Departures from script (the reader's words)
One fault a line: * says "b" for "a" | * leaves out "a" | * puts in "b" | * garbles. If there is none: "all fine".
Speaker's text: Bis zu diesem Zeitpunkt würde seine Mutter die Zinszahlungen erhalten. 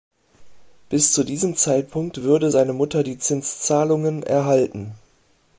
all fine